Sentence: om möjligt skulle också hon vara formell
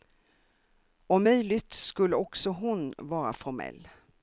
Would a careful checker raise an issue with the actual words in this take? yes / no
no